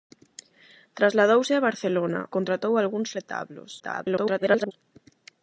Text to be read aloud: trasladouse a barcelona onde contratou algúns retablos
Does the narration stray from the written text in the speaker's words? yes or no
yes